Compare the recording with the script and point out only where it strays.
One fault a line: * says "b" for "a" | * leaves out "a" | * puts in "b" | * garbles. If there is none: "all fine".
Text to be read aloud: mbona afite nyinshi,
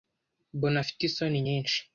* puts in "isoni"